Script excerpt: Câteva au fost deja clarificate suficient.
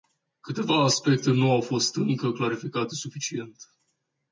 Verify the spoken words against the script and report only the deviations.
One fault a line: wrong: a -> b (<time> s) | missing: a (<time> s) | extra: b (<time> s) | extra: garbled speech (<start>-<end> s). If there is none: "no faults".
extra: aspecte nu (0.8 s)
wrong: deja -> încă (1.9 s)